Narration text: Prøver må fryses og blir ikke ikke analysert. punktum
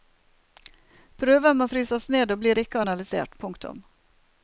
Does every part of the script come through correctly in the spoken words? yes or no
no